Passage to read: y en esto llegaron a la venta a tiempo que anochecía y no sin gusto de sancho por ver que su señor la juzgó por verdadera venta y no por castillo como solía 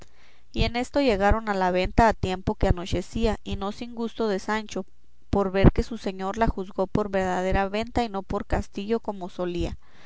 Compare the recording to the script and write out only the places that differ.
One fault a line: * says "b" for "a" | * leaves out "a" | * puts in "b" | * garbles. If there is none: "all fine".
all fine